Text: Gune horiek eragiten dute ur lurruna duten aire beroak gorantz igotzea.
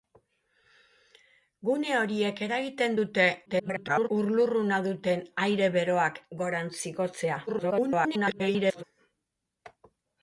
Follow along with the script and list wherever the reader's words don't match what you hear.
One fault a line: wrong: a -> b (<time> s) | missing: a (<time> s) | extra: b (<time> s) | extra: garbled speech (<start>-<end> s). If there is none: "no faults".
extra: garbled speech (3.5-4.1 s)
extra: garbled speech (7.5-8.8 s)